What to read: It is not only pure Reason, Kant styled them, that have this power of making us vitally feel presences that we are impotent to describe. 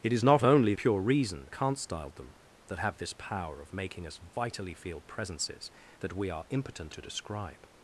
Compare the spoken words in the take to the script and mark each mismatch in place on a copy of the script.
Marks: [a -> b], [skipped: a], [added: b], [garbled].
It is not only pure Reason, Kant styled them, that have this power of making us vitally feel presences that we are impotent to describe.